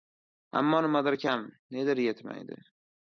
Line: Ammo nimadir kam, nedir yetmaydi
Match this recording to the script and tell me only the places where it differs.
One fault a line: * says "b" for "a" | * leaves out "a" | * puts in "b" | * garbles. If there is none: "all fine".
all fine